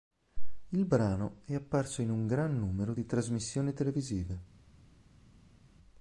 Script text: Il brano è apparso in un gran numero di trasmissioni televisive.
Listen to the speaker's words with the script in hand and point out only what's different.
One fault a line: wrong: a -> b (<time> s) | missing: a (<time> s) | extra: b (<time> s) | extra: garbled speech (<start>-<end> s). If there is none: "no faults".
no faults